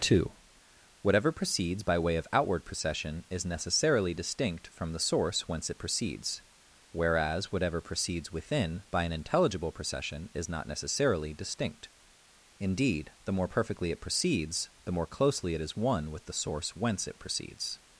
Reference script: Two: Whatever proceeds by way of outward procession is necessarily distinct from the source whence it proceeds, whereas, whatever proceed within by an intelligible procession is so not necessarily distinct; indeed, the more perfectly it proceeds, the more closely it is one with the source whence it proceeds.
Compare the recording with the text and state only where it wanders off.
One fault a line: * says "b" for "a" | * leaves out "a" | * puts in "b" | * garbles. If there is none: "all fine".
* says "proceeds" for "proceed"
* leaves out "so"